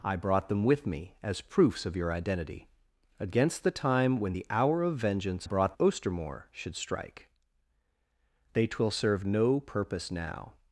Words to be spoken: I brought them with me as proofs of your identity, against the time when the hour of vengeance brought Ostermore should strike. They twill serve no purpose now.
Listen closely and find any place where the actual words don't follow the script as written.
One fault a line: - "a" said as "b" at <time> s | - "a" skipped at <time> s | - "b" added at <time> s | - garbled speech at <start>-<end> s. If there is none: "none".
none